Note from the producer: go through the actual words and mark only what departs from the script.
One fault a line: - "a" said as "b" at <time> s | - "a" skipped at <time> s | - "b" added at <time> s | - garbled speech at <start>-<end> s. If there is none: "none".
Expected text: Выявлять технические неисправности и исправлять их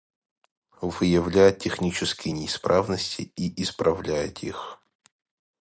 none